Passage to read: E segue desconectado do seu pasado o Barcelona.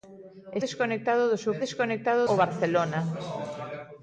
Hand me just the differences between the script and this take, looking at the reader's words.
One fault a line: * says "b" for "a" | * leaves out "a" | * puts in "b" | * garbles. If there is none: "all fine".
* leaves out "segue"
* says "desconectado" for "pasado"